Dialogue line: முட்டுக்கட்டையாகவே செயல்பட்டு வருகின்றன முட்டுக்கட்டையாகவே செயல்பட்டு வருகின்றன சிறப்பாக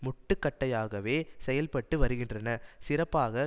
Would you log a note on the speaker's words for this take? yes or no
yes